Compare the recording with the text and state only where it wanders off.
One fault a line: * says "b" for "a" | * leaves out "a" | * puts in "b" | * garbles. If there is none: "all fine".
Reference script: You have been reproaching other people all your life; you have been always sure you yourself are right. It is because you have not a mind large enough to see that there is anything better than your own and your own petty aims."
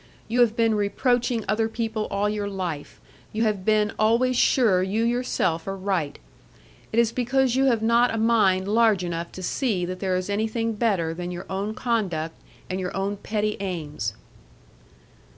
* puts in "conduct"